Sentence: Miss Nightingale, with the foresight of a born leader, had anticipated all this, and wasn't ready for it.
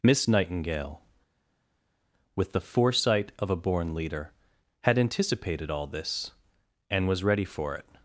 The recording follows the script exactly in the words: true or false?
false